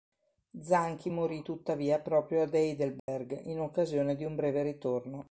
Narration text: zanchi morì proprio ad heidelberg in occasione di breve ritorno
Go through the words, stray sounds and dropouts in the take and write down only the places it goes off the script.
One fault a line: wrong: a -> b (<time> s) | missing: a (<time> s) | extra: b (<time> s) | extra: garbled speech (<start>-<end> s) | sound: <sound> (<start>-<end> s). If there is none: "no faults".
extra: tuttavia (1.4 s)
sound: dropout (3.0-3.1 s)
extra: un (4.3 s)